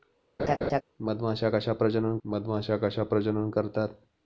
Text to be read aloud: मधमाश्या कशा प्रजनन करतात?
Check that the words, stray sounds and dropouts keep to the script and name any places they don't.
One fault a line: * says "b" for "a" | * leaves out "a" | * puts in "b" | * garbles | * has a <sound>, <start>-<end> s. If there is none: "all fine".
* has a laugh, 0.4-0.8 s
* puts in "मधमाश्या कशा प्रजनन"